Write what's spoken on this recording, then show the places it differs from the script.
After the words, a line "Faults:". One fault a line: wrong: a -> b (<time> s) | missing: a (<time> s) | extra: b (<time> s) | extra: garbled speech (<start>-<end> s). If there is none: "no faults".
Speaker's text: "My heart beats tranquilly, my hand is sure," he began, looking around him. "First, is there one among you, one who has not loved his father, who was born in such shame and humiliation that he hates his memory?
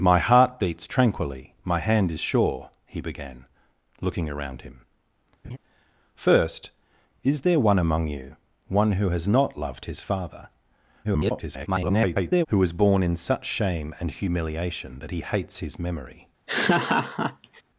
"My heart beats tranquilly, my hand is sure," he began, looking around him. "First, is there one among you, one who has not loved his father, [garbled] who was born in such shame and humiliation that he hates his memory?
Faults:
extra: garbled speech (11.0-12.5 s)